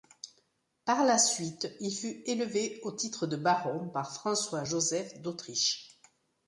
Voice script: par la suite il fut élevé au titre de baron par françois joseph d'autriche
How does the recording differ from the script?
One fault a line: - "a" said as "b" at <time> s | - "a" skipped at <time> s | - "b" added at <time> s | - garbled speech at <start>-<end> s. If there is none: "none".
none